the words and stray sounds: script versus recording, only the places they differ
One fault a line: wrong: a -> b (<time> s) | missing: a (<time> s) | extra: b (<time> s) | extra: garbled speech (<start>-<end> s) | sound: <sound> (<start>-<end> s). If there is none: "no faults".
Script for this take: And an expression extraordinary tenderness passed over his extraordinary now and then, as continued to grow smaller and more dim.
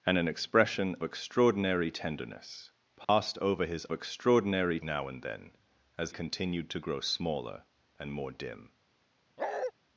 sound: dropout (3.0-3.1 s)
sound: bark (9.4-9.7 s)